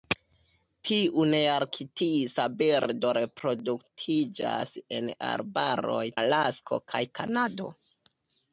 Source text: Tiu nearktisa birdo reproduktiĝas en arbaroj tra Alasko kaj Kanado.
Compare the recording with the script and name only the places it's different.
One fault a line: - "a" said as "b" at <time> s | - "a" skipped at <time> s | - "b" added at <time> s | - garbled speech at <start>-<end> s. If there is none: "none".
- "tra" skipped at 6.0 s